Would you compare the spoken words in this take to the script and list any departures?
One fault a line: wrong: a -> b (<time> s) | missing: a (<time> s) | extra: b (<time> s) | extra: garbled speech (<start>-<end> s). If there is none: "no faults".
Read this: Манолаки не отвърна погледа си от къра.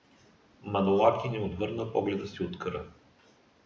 no faults